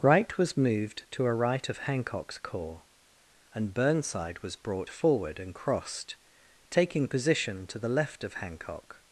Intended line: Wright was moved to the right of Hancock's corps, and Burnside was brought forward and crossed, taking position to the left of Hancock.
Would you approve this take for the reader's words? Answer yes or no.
no